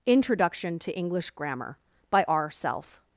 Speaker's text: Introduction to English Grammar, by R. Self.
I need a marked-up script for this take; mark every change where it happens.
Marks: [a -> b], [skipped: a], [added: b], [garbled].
Introduction to English Grammar, by R. Self.